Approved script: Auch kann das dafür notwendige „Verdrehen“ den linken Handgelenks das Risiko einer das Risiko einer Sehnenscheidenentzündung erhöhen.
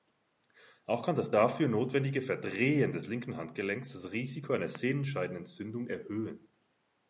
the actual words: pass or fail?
fail